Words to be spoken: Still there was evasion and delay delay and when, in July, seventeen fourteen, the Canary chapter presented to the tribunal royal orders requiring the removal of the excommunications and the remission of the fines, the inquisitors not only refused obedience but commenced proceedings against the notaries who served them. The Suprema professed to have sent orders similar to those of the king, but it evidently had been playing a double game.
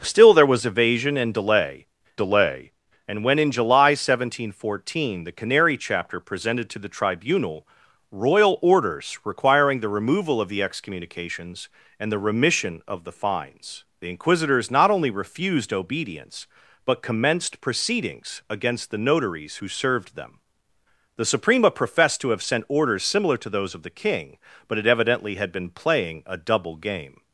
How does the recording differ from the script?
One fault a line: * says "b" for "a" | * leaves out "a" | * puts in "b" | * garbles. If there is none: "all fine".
all fine